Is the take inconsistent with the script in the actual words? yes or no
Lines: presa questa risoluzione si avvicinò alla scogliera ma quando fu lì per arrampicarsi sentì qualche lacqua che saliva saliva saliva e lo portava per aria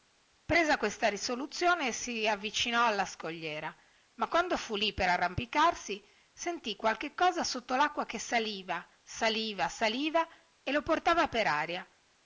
yes